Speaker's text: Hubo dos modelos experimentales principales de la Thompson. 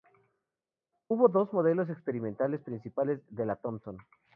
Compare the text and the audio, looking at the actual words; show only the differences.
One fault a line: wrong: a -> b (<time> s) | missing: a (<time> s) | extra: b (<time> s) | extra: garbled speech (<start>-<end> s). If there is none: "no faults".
no faults